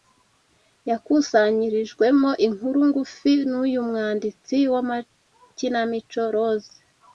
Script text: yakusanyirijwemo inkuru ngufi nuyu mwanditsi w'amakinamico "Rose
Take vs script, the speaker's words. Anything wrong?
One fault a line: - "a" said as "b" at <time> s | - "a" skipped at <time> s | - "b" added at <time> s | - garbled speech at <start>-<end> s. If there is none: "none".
none